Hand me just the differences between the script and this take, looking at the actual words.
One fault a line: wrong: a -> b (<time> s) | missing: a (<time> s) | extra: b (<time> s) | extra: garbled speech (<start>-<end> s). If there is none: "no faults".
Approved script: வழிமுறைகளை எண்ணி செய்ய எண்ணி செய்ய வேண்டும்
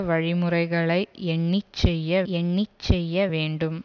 no faults